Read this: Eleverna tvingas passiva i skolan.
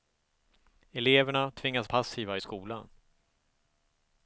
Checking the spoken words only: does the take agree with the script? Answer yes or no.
yes